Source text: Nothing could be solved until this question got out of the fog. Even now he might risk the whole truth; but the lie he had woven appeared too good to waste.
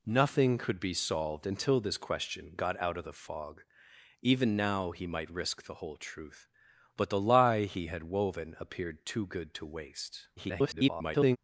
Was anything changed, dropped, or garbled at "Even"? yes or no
no